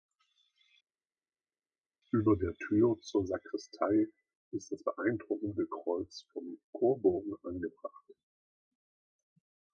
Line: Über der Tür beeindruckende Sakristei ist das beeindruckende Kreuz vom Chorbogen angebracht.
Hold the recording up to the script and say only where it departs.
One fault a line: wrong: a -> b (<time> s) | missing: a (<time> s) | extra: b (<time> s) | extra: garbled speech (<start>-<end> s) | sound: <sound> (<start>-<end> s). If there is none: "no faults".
wrong: beeindruckende -> zur (3.0 s)